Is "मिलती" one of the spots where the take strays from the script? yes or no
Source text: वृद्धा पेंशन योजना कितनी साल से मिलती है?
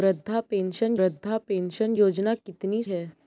yes